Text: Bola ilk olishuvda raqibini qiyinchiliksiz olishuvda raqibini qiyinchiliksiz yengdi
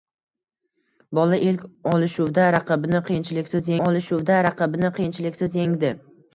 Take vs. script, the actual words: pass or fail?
pass